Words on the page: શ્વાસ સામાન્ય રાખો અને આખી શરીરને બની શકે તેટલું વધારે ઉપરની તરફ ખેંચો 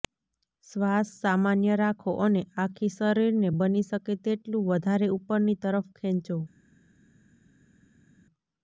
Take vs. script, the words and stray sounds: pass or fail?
pass